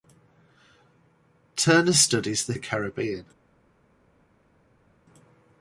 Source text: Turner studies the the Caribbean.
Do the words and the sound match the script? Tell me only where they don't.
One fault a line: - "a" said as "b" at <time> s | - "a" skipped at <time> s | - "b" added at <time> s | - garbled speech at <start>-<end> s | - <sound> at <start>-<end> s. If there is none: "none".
none